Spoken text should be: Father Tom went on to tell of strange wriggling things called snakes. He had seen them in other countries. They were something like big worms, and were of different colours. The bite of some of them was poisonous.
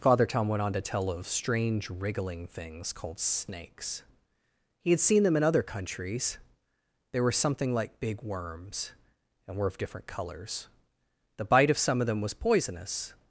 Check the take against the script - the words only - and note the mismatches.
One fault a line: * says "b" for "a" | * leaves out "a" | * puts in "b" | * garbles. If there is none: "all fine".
all fine